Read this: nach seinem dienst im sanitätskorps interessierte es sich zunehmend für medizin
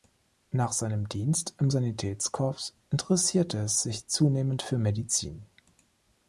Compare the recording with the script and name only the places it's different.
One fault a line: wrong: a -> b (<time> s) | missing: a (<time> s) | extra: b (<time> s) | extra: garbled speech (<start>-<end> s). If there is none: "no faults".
no faults